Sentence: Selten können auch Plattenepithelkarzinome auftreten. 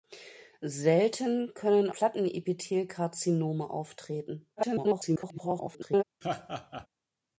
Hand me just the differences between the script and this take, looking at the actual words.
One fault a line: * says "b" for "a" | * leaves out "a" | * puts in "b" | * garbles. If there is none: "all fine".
* leaves out "auch"
* garbles